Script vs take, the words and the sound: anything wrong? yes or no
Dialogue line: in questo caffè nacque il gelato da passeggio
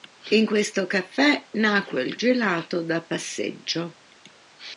no